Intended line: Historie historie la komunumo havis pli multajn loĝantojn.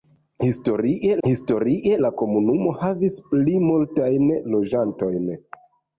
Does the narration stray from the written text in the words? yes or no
no